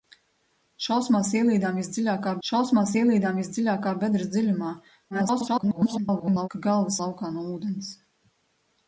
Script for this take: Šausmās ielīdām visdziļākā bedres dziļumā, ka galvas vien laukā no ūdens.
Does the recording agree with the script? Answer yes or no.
no